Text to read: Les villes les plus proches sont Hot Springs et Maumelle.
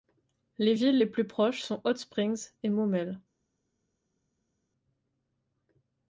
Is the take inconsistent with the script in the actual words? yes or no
no